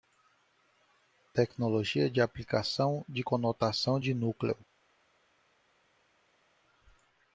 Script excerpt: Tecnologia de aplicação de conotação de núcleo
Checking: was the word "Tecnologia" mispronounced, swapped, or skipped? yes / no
no